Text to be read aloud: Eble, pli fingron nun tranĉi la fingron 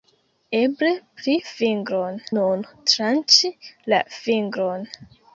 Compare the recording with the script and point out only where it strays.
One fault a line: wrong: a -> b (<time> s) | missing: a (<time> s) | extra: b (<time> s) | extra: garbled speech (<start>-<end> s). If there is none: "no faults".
no faults